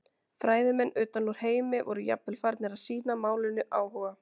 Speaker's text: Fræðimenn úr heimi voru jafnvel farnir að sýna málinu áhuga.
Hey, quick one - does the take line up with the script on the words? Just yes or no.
no